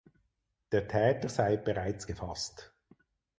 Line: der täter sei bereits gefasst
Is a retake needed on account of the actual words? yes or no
no